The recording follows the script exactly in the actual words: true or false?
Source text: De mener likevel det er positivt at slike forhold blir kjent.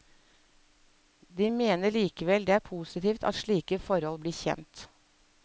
true